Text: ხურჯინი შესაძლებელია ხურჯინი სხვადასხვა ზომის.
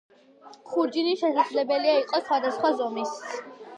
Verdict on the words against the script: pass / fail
fail